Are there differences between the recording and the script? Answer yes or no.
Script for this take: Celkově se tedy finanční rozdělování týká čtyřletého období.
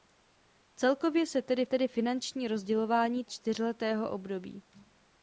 yes